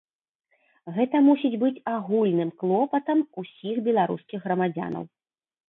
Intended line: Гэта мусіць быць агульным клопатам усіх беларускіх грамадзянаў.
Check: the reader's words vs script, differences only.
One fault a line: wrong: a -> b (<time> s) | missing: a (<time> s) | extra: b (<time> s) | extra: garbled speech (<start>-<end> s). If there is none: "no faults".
no faults